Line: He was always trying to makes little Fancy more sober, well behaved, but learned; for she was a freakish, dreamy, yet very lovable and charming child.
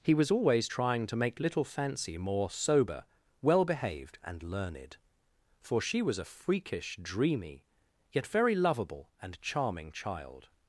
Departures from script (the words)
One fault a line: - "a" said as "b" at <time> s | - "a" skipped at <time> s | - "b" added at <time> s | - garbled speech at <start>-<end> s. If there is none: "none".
- "makes" said as "make" at 1.2 s
- "but" said as "and" at 4.2 s